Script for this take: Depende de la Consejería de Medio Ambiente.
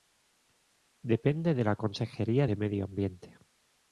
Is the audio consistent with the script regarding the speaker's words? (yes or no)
yes